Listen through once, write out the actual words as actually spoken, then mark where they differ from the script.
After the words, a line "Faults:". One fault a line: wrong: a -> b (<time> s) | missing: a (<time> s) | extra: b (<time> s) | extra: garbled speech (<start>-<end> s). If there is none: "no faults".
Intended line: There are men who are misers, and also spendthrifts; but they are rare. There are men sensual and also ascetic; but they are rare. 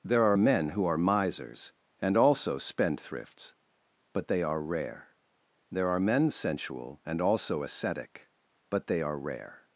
There are men who are misers, and also spendthrifts; but they are rare. There are men sensual and also ascetic; but they are rare.
Faults:
no faults